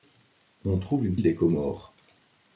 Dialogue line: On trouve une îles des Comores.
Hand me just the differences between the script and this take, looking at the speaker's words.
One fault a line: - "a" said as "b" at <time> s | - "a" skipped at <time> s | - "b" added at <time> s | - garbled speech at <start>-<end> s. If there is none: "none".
none